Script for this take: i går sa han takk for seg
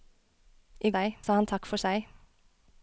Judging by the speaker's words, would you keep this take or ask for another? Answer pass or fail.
fail